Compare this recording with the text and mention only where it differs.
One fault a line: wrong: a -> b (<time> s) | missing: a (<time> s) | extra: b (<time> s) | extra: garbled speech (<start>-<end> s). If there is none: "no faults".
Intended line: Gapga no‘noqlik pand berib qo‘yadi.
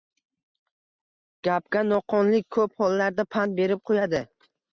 extra: ko‘p hollarda (2.6 s)